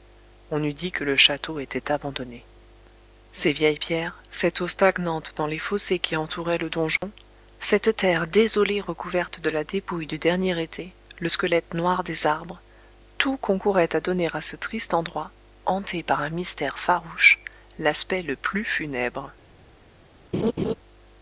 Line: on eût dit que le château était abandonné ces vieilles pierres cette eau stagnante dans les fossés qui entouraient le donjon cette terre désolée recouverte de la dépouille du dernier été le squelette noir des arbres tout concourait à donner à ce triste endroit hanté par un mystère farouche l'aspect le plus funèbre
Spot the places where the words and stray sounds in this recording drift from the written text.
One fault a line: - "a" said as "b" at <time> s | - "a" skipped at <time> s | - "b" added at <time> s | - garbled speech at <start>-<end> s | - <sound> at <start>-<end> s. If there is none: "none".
- dropout at 7.0-7.0 s
- laugh at 20.3-20.7 s